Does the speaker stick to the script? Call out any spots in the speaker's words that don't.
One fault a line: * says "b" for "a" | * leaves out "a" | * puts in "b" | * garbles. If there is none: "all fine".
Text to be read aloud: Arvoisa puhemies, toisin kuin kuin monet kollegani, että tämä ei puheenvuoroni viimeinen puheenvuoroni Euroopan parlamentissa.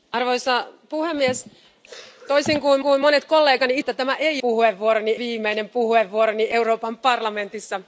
all fine